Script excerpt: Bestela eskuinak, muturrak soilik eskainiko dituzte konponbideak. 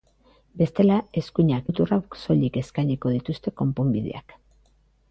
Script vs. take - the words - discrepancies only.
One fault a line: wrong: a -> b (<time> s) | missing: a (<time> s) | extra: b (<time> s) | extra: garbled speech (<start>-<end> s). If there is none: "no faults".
no faults